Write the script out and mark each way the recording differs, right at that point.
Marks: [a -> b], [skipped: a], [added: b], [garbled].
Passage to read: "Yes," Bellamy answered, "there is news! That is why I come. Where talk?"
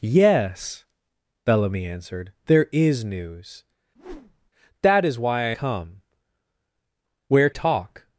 "Yes," Bellamy answered, "there is news! That is why I come. Where talk?"